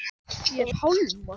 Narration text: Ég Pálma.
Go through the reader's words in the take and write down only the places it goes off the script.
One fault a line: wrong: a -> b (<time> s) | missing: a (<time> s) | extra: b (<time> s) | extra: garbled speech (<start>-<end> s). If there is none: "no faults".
no faults